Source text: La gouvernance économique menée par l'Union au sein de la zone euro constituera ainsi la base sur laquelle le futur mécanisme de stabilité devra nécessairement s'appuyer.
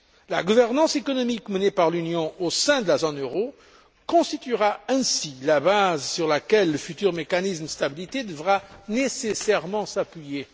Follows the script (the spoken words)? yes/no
yes